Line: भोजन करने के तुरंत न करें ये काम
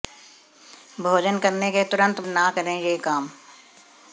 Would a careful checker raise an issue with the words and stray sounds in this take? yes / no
no